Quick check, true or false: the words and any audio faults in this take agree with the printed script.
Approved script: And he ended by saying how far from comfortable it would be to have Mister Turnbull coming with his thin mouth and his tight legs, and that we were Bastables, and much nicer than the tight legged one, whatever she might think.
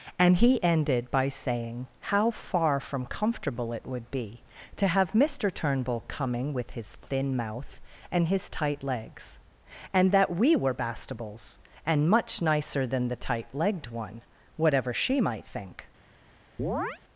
false